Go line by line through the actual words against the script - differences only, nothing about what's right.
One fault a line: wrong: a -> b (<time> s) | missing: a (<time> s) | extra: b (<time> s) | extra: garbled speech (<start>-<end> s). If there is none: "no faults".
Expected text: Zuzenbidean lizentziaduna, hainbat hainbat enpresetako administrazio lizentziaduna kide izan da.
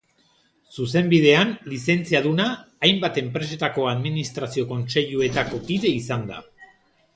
missing: hainbat (3.2 s)
wrong: lizentziaduna -> kontseiluetako (4.7 s)